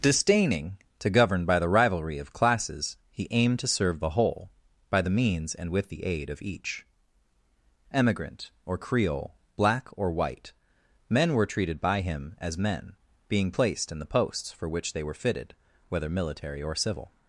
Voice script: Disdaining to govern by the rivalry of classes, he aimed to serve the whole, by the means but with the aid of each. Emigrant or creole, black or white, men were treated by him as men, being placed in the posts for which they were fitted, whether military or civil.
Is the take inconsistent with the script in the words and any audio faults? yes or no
yes